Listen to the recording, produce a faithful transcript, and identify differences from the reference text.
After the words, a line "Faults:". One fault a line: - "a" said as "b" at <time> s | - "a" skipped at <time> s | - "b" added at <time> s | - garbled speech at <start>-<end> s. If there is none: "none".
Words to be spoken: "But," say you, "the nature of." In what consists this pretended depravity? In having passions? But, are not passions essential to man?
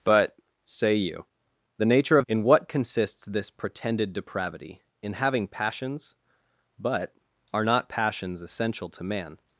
"But," say you, "the nature of." In what consists this pretended depravity? In having passions? But, are not passions essential to man?
Faults:
none